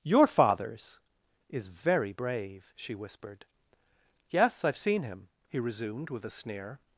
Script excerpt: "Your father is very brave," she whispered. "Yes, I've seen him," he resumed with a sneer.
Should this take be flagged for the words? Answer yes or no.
yes